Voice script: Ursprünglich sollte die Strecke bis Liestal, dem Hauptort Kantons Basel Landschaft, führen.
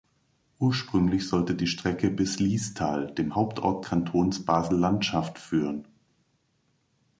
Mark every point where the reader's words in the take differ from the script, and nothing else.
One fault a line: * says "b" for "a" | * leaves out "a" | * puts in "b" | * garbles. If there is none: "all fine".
all fine